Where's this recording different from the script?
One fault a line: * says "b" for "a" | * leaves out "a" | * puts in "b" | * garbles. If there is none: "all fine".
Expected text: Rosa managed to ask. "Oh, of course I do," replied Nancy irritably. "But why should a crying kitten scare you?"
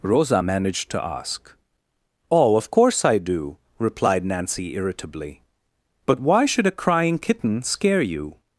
all fine